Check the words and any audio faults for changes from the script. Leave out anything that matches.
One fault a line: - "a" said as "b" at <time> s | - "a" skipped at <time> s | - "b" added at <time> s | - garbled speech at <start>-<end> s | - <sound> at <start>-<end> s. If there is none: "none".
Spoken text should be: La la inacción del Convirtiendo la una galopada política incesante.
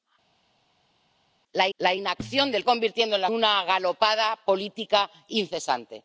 none